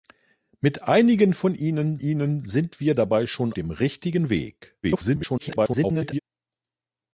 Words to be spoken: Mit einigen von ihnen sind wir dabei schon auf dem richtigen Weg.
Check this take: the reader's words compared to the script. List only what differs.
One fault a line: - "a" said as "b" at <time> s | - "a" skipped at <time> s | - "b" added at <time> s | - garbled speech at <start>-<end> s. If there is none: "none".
- "ihnen" added at 1.9 s
- "auf" skipped at 3.5 s
- garbled speech at 4.8-6.2 s